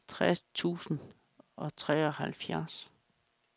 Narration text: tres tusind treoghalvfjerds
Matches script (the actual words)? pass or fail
fail